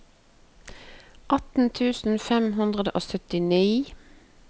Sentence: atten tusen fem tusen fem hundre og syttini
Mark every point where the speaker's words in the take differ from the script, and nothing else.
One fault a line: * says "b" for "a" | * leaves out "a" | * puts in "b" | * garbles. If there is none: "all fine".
* leaves out "tusen fem"